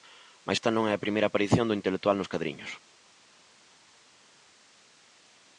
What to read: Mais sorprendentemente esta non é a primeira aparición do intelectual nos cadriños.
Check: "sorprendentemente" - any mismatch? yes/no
yes